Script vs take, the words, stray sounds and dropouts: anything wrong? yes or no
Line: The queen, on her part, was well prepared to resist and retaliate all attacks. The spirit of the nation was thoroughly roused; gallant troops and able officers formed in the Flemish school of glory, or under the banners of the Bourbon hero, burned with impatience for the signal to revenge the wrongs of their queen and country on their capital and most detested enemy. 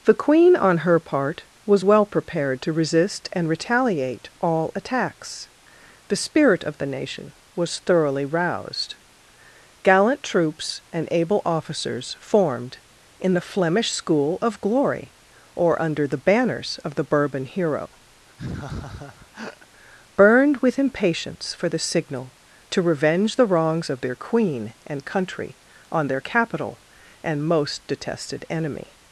yes